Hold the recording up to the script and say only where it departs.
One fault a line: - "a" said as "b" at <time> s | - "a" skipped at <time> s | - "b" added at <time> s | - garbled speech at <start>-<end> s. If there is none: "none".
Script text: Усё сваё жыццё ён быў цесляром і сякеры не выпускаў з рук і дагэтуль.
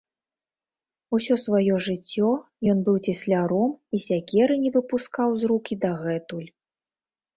none